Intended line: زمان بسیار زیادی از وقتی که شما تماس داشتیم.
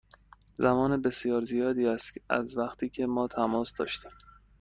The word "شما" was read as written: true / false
false